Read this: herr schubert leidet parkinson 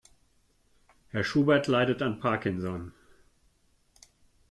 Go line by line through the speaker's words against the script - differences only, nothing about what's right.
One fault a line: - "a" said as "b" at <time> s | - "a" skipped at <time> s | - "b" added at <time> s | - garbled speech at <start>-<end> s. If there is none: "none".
- "an" added at 2.0 s